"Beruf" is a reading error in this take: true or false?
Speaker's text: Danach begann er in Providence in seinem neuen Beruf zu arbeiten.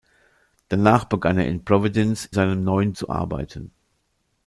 true